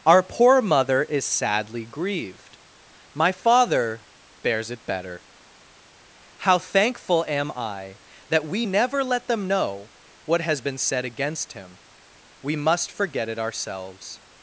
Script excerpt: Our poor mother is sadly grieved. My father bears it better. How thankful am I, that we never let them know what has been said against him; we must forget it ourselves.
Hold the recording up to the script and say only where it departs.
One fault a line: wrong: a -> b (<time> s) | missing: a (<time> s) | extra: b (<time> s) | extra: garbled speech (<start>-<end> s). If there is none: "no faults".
no faults